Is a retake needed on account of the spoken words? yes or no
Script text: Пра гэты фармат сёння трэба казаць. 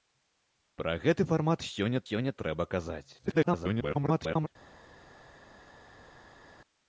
yes